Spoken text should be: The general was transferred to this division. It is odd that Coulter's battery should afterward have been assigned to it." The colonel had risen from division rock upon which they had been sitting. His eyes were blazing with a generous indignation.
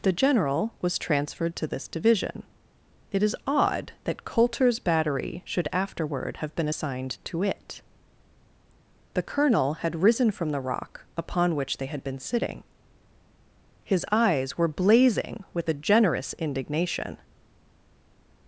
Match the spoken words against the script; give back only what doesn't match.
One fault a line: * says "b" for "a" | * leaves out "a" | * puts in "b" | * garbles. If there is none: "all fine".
* says "the" for "division"